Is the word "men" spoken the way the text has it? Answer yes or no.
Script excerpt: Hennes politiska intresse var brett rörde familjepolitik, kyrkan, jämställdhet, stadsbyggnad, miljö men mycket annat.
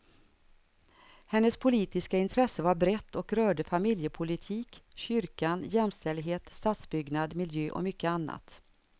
no